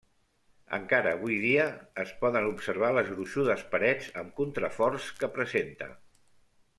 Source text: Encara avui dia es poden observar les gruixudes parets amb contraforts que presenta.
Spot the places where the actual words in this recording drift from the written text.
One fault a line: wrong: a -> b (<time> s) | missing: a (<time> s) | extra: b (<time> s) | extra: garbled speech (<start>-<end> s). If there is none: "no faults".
no faults